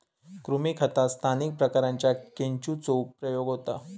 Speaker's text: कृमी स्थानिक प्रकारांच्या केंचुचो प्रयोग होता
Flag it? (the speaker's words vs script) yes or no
yes